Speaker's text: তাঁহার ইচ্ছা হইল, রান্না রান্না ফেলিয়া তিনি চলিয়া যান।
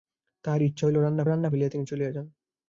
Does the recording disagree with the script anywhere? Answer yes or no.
no